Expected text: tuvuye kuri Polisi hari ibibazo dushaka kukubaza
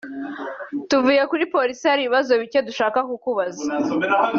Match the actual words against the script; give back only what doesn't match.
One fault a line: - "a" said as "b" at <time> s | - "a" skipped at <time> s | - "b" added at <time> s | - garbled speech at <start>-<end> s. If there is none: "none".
- "bike" added at 2.4 s